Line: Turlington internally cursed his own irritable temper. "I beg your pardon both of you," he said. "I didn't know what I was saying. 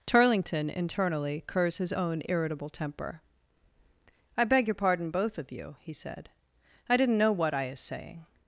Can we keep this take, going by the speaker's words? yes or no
no